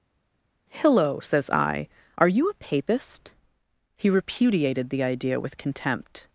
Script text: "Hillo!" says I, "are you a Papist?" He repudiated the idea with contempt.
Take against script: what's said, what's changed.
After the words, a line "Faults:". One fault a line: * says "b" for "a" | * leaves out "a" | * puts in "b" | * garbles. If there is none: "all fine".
"Hillo!" says I, "are you a Papist?" He repudiated the idea with contempt.
Faults:
all fine